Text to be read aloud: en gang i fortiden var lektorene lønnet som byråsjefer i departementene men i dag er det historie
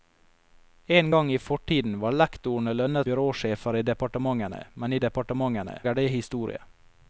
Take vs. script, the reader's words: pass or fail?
fail